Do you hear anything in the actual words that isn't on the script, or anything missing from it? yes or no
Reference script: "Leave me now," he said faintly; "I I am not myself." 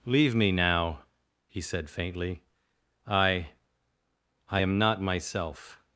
no